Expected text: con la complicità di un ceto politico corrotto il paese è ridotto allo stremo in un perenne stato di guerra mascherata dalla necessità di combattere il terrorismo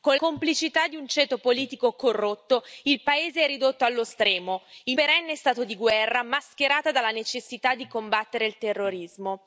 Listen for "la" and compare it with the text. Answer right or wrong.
wrong